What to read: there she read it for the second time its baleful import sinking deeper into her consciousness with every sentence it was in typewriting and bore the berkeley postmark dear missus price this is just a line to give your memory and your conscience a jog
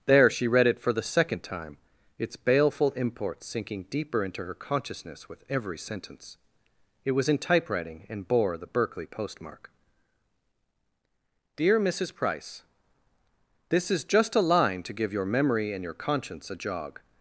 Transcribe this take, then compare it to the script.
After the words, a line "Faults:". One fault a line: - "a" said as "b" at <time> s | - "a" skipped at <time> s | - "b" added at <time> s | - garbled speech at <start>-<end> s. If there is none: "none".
there she read it for the second time its baleful import sinking deeper into her consciousness with every sentence it was in typewriting and bore the berkeley postmark dear missus price this is just a line to give your memory and your conscience a jog
Faults:
none